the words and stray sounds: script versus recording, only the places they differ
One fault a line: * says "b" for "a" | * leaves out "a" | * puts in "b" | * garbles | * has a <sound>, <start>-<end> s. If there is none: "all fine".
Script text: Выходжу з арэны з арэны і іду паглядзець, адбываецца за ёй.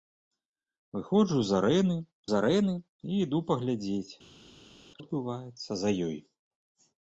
all fine